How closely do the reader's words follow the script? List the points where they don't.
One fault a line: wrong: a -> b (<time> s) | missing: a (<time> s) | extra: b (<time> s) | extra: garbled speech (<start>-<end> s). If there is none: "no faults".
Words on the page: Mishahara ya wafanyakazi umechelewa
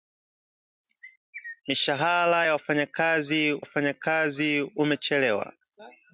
extra: wafanyakazi (3.6 s)